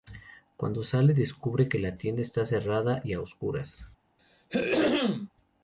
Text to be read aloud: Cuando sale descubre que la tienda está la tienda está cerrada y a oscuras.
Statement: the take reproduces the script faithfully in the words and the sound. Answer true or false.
false